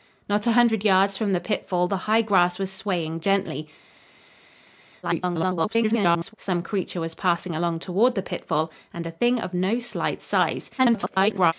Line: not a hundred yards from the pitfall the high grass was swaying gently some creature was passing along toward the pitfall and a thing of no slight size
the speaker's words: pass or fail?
fail